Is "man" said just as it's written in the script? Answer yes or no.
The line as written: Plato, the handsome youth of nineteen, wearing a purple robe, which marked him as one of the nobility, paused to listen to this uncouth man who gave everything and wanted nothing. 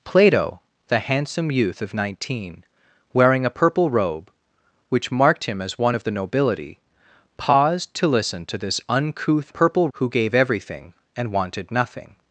no